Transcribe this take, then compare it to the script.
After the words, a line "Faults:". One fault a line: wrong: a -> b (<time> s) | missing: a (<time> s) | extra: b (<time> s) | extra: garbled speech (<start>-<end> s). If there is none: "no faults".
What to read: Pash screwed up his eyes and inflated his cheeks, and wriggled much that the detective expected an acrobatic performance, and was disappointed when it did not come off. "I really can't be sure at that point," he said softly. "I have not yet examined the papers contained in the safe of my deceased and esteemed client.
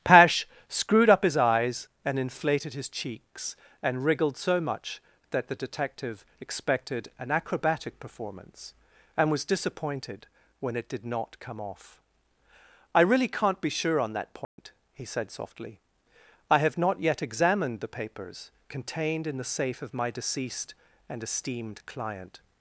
Pash screwed up his eyes and inflated his cheeks, and wriggled so much that the detective expected an acrobatic performance, and was disappointed when it did not come off. "I really can't be sure on that point," he said softly. "I have not yet examined the papers contained in the safe of my deceased and esteemed client.
Faults:
extra: so (4.4 s)
wrong: at -> on (14.0 s)